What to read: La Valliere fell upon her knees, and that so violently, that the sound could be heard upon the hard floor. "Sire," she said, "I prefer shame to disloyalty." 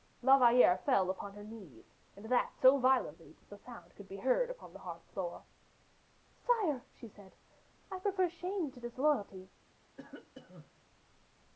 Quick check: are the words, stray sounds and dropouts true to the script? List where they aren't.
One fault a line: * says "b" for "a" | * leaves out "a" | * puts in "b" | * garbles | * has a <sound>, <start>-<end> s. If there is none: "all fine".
* has a cough, 10.0-10.8 s